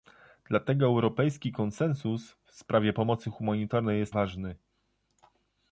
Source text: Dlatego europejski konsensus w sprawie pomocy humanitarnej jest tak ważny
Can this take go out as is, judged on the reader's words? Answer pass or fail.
fail